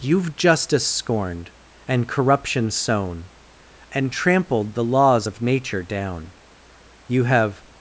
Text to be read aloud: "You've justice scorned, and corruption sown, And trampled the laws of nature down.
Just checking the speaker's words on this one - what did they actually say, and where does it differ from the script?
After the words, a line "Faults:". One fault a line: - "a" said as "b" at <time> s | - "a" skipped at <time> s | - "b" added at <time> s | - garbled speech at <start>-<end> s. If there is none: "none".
"You've justice scorned, and corruption sown, And trampled the laws of nature down. You have
Faults:
- "You have" added at 7.1 s